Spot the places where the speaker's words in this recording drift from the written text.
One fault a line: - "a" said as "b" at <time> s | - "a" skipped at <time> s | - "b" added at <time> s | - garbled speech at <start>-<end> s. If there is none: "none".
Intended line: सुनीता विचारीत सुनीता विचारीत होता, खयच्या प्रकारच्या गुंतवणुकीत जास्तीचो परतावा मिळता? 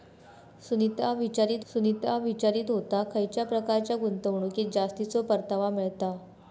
none